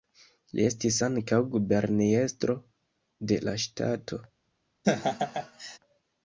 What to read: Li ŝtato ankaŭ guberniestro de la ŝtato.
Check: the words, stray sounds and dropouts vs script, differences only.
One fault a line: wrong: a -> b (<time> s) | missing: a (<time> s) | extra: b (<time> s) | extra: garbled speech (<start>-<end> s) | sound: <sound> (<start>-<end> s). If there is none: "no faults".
wrong: ŝtato -> estis (0.7 s)
sound: laugh (4.8-5.8 s)